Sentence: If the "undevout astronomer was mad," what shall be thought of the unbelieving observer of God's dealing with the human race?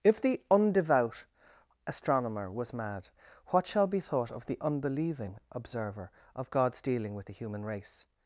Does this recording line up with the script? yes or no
yes